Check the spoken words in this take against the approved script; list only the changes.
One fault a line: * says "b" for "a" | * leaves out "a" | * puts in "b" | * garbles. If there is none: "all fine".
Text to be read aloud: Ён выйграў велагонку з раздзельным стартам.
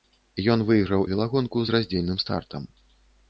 all fine